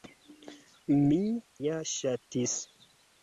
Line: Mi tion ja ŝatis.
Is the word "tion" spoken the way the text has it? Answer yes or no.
no